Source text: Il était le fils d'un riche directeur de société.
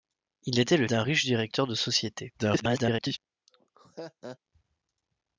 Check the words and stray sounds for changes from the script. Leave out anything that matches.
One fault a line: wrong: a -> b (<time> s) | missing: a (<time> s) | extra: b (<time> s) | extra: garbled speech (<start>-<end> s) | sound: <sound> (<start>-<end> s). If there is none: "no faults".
missing: fils (0.9 s)
extra: garbled speech (2.4-3.2 s)
sound: laugh (3.5-4.4 s)